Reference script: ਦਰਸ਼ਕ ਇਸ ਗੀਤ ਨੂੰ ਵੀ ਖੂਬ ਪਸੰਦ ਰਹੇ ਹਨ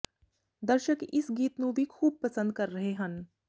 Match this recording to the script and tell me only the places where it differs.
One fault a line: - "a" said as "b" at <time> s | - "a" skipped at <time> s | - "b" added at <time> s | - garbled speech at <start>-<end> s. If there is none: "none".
- "ਕਰ" added at 2.5 s